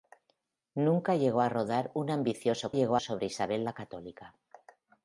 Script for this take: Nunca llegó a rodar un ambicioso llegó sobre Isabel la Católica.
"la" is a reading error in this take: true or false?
false